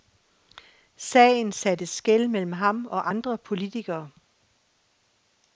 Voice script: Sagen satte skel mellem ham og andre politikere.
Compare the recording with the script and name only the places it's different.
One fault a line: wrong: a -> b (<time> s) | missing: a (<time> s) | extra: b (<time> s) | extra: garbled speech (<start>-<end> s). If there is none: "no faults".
no faults